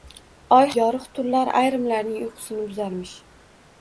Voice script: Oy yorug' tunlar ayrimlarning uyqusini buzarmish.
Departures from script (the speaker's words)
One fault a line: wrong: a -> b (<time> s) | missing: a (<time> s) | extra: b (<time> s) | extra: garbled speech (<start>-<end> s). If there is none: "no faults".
no faults